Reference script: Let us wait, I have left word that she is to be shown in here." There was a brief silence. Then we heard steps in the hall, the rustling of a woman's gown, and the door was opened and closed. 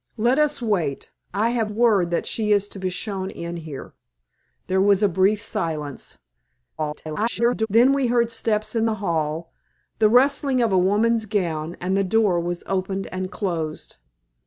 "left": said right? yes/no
no